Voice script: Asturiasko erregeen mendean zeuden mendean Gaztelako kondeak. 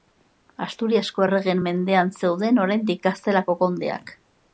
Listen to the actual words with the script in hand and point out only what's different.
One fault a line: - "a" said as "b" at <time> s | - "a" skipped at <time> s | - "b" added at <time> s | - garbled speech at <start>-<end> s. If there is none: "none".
- "mendean" said as "oraindik" at 2.7 s